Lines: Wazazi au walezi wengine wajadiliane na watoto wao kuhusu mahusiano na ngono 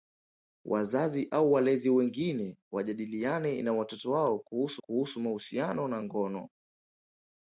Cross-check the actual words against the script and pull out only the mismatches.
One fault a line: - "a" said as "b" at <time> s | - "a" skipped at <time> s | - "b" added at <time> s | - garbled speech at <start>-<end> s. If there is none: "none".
- "kuhusu" added at 4.8 s